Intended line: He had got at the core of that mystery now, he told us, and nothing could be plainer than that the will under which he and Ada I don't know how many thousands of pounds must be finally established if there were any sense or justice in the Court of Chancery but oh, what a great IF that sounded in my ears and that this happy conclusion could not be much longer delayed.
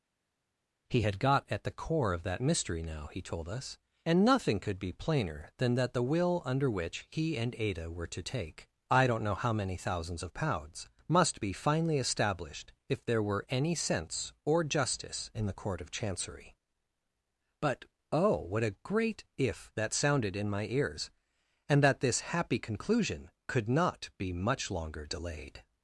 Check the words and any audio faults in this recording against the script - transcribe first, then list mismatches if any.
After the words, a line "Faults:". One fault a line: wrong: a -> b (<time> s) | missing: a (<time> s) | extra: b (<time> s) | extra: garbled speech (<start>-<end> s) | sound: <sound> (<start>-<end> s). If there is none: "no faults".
He had got at the core of that mystery now, he told us, and nothing could be plainer than that the will under which he and Ada were to take I don't know how many thousands of pounds must be finally established if there were any sense or justice in the Court of Chancery but oh, what a great IF that sounded in my ears and that this happy conclusion could not be much longer delayed.
Faults:
extra: were to take (7.9 s)